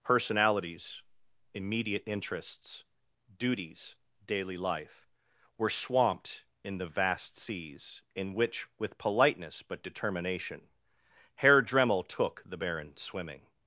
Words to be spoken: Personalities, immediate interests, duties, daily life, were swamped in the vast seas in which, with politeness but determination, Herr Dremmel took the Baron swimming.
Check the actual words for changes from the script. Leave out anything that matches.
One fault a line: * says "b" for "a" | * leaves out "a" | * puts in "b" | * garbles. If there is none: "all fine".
all fine